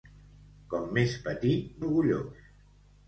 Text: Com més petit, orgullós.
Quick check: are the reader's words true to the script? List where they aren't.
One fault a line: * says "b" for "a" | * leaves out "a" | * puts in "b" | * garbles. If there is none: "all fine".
all fine